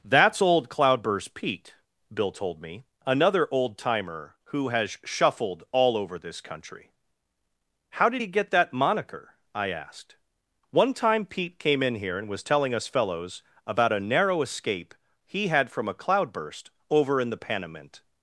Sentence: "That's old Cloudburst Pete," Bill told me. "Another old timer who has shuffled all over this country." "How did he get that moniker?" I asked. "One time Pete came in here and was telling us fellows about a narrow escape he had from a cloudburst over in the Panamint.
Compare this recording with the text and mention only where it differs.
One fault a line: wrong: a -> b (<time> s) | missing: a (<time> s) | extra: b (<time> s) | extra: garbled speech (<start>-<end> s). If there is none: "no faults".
no faults